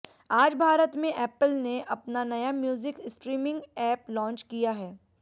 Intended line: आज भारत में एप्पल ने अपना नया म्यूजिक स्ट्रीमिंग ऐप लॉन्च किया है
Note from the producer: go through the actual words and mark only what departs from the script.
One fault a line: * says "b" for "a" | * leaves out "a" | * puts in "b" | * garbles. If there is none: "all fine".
all fine